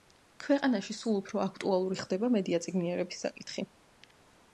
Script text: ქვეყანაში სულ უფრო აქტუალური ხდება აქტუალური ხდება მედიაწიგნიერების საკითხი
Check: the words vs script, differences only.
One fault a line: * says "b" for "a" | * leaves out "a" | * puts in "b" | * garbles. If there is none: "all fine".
* leaves out "აქტუალური ხდება"